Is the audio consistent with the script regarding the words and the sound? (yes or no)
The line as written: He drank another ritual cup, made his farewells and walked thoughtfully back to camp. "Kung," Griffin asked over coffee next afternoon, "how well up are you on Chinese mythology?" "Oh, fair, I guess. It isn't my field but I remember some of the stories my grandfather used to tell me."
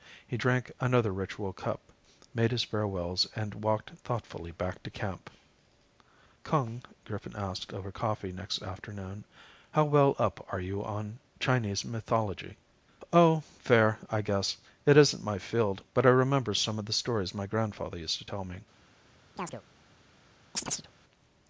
no